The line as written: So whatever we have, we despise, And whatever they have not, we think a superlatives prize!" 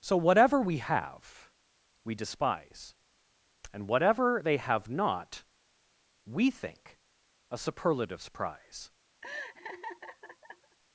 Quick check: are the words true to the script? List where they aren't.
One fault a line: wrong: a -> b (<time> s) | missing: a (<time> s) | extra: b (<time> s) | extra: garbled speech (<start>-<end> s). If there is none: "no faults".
no faults